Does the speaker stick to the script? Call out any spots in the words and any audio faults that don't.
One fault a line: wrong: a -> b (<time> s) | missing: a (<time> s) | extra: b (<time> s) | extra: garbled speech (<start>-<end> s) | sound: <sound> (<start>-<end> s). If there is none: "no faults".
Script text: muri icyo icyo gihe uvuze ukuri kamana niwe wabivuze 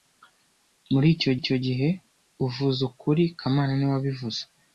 no faults